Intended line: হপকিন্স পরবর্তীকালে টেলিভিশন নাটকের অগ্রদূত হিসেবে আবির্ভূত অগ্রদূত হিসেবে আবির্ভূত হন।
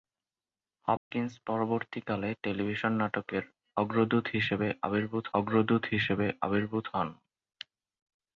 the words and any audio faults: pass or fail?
fail